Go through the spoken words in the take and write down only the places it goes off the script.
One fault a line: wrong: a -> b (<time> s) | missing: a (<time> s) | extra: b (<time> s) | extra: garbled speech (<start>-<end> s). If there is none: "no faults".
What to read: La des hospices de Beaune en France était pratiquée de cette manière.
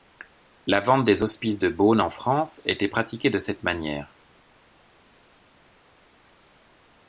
extra: vente (0.8 s)